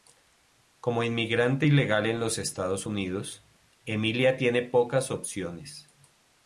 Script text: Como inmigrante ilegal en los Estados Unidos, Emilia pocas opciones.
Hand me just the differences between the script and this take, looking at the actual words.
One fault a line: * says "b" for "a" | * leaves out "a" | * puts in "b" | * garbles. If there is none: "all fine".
* puts in "tiene"